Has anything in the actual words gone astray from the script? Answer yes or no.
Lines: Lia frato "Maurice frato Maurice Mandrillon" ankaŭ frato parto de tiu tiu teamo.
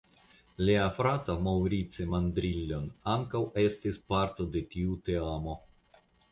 yes